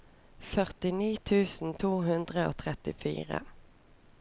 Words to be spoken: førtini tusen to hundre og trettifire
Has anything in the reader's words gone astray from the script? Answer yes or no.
no